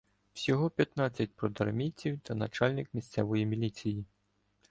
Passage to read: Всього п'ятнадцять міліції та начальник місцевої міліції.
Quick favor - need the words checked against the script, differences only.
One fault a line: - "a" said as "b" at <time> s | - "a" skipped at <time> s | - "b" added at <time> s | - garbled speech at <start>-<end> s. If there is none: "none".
- "міліції" said as "продармійців" at 1.4 s